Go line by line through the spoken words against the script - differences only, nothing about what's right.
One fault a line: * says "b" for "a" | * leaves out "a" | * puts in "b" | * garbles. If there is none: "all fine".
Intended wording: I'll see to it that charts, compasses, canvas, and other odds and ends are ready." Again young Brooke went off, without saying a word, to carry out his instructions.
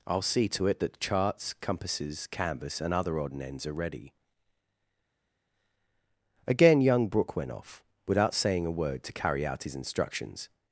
* says "odd" for "odds"